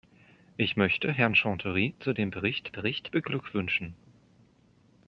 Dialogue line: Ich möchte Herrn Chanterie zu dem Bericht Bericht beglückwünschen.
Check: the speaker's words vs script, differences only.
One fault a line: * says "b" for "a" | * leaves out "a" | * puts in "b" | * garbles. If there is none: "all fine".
all fine